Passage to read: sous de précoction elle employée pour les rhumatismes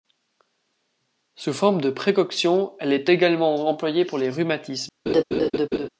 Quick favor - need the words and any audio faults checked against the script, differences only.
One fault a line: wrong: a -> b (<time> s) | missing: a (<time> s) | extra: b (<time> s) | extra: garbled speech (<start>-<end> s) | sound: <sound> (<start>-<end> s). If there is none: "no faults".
extra: forme (1.5 s)
extra: est également (2.9 s)
sound: laugh (5.1-5.9 s)